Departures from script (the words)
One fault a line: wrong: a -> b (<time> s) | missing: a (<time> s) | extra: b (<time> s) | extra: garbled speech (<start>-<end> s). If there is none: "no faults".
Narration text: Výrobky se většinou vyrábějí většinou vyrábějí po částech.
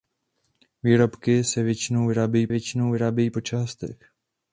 no faults